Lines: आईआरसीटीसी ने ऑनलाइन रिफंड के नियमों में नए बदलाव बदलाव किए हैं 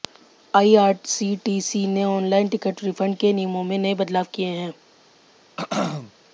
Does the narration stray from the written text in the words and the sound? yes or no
yes